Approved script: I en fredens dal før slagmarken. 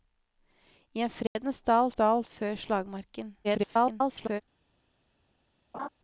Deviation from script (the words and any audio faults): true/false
true